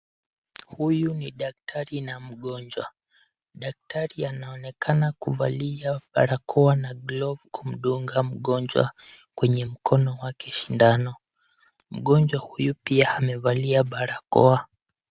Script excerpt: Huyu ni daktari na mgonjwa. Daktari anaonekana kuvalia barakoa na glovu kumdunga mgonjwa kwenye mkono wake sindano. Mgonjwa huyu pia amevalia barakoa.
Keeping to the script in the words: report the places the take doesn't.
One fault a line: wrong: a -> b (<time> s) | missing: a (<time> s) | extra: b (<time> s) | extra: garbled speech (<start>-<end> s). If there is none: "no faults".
no faults